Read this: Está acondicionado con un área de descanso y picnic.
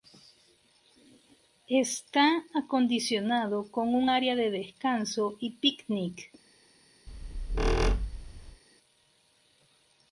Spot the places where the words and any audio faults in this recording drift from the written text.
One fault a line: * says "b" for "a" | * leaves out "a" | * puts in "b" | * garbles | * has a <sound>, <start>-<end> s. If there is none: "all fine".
* has a squeak, 7.1-8.6 s